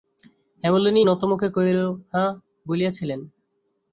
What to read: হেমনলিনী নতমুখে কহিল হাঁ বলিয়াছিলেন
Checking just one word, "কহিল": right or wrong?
right